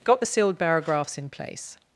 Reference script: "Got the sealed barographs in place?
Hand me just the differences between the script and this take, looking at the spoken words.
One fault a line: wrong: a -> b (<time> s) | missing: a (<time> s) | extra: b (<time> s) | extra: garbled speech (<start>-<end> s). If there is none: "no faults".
no faults